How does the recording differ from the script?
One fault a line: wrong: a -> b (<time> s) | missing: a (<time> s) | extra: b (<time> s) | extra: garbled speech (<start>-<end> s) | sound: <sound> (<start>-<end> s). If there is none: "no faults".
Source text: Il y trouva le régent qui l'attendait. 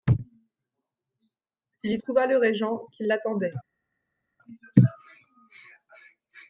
no faults